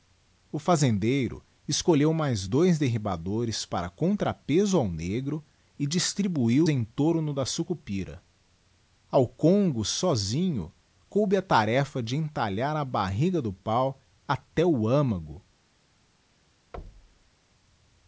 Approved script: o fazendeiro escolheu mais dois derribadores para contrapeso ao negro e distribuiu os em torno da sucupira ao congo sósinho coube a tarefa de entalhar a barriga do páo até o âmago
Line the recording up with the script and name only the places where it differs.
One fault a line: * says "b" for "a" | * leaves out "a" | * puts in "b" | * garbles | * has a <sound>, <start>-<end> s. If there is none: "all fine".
* leaves out "os"
* has a thud, 16.7-17.3 s